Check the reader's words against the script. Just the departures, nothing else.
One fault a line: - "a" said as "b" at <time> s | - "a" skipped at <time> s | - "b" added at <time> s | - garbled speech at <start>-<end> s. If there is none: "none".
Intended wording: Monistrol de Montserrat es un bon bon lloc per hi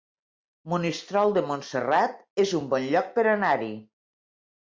- "bon" skipped at 2.9 s
- "anar" added at 3.3 s